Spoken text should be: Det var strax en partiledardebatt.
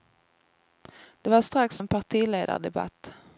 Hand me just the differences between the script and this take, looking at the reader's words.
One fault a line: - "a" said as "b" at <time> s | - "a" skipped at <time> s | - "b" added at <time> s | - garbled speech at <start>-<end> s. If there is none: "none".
none